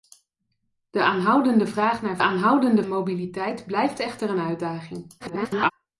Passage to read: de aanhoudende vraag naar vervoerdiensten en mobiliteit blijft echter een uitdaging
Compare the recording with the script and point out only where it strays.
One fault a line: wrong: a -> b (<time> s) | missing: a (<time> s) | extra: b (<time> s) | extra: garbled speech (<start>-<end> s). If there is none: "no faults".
wrong: vervoerdiensten -> aanhoudende (2.2 s)
extra: garbled speech (5.2-5.7 s)